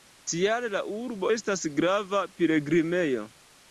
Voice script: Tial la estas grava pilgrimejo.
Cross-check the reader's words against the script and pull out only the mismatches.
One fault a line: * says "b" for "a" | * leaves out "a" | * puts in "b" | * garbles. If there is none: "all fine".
* puts in "urbo"